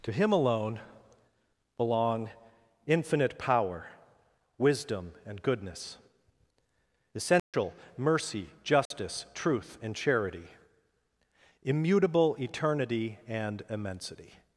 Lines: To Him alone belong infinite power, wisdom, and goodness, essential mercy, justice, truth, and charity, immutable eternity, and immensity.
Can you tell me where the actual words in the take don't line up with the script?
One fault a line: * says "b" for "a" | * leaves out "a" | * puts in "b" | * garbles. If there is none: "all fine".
all fine